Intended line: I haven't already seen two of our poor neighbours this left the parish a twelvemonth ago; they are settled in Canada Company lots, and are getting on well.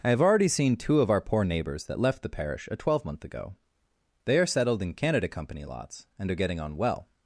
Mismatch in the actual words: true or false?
true